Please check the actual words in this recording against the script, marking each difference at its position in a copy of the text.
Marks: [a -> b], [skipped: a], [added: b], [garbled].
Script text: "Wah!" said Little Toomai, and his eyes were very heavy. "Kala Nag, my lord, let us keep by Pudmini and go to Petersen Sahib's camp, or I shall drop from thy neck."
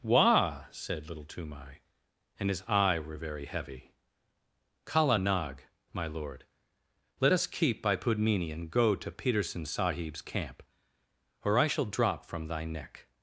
"Wah!" said Little Toomai, and his [eyes -> eye] were very heavy. "Kala Nag, my lord, let us keep by Pudmini and go to Petersen Sahib's camp, or I shall drop from thy neck."